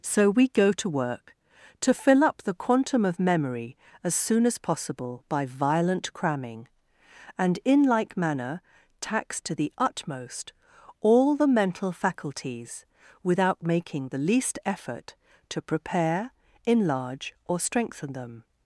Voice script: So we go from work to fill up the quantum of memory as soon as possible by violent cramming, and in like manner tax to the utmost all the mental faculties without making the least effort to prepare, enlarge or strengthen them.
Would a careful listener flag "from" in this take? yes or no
yes